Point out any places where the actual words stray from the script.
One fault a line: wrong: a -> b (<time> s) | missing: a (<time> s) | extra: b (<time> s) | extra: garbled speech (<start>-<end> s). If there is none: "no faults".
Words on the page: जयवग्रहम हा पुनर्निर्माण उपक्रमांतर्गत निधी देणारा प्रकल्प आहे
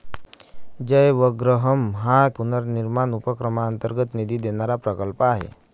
no faults